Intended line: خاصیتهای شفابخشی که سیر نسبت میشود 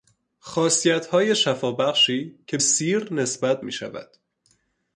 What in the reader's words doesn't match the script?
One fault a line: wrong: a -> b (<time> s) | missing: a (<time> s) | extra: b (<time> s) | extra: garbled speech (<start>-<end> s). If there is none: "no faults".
no faults